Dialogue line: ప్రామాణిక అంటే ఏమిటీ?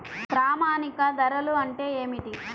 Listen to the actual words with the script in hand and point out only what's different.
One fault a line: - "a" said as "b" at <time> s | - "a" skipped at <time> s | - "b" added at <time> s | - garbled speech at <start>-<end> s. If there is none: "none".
- "ధరలు" added at 1.1 s